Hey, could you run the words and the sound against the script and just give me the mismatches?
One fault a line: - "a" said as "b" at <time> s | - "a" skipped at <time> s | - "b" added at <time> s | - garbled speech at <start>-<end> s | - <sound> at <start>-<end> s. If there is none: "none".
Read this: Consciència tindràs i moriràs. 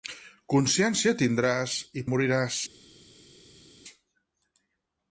none